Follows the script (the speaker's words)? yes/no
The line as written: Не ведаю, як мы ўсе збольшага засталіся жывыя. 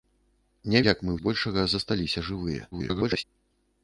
no